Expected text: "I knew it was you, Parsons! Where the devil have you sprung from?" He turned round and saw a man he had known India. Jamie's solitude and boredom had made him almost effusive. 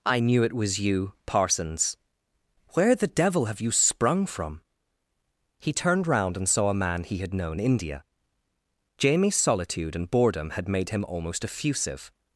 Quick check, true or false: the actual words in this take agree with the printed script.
true